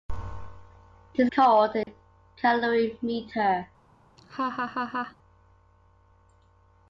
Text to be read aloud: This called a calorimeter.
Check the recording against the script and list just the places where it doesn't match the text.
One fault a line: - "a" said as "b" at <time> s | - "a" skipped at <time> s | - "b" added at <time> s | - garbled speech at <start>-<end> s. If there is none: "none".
none